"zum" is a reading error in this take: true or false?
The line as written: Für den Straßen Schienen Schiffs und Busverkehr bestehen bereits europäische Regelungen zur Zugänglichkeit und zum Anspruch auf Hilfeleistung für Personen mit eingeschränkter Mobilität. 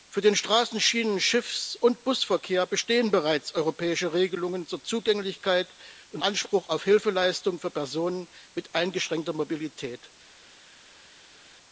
true